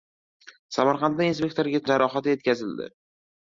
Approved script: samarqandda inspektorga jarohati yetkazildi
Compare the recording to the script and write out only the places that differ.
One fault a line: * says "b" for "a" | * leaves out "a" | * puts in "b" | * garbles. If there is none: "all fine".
all fine